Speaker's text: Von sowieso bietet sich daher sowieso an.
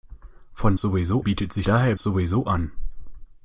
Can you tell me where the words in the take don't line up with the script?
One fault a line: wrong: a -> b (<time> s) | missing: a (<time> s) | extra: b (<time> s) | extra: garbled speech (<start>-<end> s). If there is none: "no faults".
no faults